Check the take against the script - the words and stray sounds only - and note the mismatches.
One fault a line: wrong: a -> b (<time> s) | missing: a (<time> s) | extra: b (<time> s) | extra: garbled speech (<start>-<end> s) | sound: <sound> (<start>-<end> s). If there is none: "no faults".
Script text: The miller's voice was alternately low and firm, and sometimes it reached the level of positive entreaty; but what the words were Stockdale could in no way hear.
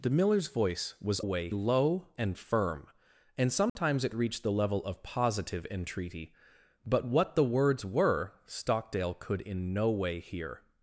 wrong: alternately -> way (1.2 s)
sound: dropout (3.7-3.8 s)